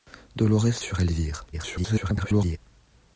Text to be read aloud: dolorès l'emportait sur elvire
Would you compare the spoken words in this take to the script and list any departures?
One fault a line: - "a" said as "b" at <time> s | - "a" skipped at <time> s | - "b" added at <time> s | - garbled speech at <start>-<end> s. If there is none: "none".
- "l'emportait" skipped at 0.8 s
- garbled speech at 1.5-2.6 s